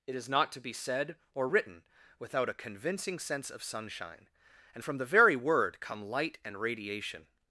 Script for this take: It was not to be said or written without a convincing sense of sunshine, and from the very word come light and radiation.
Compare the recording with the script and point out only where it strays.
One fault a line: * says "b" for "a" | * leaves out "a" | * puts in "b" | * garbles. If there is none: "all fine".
* says "is" for "was"